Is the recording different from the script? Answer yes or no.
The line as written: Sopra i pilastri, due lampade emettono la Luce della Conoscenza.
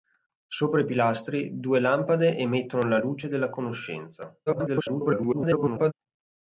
yes